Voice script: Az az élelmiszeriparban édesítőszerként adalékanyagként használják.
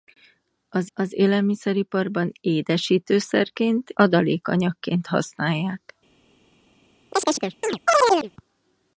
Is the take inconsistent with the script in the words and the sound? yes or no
yes